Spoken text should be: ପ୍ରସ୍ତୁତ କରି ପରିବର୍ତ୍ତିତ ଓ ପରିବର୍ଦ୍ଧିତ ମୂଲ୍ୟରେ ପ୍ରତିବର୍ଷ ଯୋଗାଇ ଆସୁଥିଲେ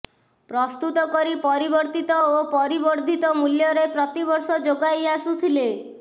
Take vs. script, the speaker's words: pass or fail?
pass